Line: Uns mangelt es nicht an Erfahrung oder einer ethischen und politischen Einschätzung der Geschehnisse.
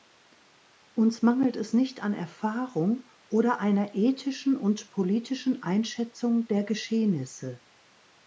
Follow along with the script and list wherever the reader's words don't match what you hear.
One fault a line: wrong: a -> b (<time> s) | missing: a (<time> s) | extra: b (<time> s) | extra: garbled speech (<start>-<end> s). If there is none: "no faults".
no faults